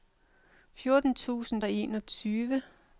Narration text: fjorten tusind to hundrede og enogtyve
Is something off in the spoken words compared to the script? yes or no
yes